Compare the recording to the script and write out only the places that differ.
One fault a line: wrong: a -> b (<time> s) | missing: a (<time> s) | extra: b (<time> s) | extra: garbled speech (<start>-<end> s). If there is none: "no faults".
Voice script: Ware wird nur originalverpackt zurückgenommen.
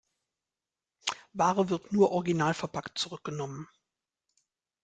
no faults